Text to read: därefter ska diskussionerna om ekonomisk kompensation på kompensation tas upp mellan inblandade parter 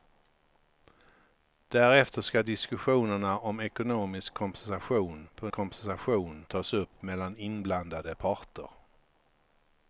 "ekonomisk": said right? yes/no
yes